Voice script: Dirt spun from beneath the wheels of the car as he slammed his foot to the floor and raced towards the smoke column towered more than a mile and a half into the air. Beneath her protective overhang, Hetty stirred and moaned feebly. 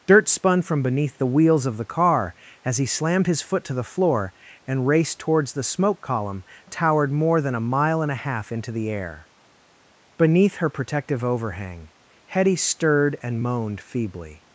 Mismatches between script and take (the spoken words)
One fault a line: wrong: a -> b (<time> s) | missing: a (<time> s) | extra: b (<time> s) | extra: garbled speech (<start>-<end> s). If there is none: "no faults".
no faults